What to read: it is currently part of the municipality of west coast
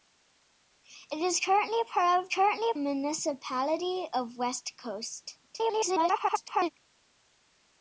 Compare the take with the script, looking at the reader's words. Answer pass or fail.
fail